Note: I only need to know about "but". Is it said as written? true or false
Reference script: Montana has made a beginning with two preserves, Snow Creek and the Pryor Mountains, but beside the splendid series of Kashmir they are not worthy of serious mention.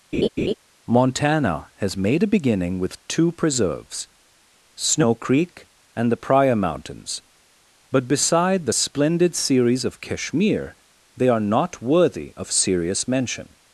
true